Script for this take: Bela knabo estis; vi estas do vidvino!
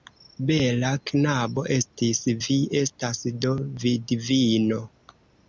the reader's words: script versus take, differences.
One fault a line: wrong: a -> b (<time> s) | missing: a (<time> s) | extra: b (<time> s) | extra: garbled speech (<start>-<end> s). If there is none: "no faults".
no faults